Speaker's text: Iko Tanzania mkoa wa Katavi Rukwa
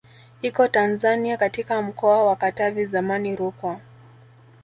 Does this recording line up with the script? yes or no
no